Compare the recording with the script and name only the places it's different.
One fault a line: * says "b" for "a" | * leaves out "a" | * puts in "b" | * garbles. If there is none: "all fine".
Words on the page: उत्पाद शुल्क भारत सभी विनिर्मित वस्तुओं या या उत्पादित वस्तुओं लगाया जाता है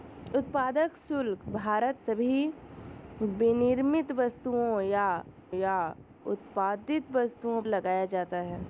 all fine